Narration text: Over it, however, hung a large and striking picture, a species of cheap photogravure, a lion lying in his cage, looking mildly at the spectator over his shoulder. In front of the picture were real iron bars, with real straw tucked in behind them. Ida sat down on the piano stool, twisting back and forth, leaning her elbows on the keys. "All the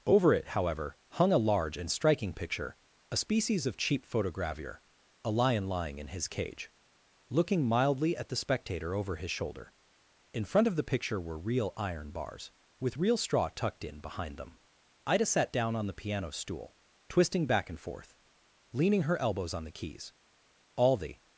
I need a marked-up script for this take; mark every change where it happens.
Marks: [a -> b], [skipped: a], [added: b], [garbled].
Over it, however, hung a large and striking picture, a species of cheap photogravure, a lion lying in his cage, looking mildly at the spectator over his shoulder. In front of the picture were real iron bars, with real straw tucked in behind them. Ida sat down on the piano stool, twisting back and forth, leaning her elbows on the keys. "All the